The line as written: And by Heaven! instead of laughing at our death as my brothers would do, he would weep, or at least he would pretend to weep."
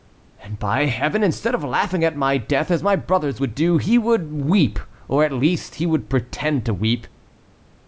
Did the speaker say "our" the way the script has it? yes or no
no